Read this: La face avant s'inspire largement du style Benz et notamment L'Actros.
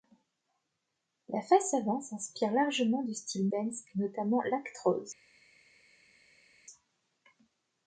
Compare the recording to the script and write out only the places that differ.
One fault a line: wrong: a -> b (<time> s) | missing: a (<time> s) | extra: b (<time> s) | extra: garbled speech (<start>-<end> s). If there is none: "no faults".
no faults